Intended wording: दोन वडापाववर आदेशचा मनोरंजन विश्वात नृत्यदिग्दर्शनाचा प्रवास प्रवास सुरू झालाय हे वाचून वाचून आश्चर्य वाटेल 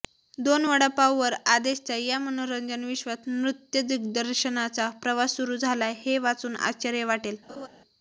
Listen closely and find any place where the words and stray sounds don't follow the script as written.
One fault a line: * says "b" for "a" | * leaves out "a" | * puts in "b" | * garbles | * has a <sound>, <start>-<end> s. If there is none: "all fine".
* puts in "या"
* leaves out "प्रवास"
* leaves out "वाचून"
* has a laugh, 7.5-7.7 s